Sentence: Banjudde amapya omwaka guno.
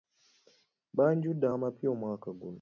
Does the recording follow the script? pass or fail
pass